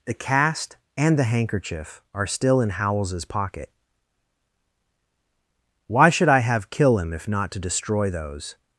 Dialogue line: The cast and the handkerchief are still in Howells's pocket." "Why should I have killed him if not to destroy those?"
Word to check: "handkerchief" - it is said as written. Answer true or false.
true